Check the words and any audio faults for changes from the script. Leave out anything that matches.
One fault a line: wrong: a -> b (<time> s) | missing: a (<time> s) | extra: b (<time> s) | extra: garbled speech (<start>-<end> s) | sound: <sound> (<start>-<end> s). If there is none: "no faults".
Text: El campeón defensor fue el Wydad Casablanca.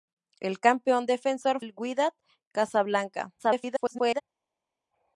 missing: fue (1.6 s)
extra: garbled speech (3.4-4.2 s)